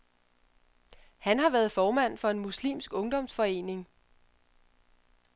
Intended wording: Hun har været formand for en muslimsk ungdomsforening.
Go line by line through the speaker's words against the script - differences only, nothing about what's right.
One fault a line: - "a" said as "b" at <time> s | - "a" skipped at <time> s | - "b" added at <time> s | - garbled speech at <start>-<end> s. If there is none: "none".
- "Hun" said as "Han" at 1.2 s